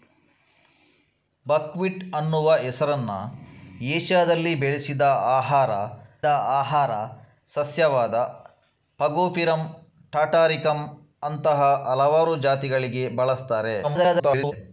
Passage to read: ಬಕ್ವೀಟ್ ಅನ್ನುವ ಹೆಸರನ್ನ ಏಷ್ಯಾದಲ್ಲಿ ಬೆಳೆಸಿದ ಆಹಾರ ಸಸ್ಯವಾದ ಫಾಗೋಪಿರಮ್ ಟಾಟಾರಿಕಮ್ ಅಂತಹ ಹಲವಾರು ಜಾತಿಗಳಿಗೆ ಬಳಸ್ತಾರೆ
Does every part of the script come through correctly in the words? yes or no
no